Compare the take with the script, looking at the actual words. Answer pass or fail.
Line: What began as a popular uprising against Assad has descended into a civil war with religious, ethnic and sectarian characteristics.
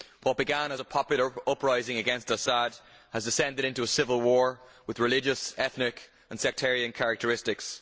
pass